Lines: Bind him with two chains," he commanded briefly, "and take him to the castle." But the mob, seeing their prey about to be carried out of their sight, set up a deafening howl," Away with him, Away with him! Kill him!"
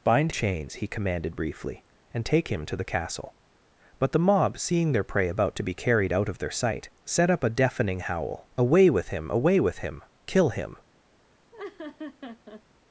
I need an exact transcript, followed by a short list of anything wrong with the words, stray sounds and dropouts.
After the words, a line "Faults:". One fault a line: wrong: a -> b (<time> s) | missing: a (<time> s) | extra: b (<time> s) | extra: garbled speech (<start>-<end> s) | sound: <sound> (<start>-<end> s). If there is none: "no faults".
Bind chains," he commanded briefly, "and take him to the castle." But the mob, seeing their prey about to be carried out of their sight, set up a deafening howl," Away with him, Away with him! Kill him!"
Faults:
missing: him with two (0.3 s)
sound: laugh (11.5-12.6 s)